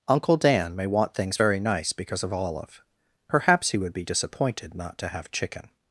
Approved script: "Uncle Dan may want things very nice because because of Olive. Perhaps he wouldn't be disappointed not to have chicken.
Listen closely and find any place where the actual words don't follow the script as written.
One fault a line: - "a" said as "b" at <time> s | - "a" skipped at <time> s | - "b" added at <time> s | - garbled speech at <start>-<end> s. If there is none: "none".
- "because" skipped at 2.2 s
- "wouldn't" said as "would" at 3.8 s